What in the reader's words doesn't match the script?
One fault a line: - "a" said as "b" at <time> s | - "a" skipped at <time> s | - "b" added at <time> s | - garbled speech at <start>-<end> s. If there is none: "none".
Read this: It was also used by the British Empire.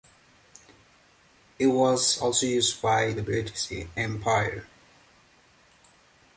none